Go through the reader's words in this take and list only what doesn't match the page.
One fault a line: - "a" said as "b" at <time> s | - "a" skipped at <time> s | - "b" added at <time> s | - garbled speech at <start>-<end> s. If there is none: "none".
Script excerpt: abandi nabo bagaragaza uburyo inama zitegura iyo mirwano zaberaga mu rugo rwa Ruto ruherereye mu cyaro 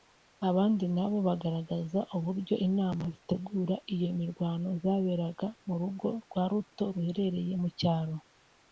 none